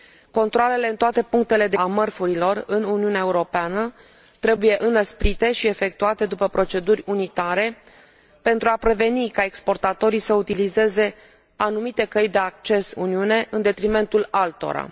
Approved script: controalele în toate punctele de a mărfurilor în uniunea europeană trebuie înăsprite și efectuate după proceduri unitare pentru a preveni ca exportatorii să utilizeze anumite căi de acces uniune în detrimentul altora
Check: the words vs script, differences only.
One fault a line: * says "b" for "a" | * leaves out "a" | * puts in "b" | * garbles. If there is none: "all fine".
all fine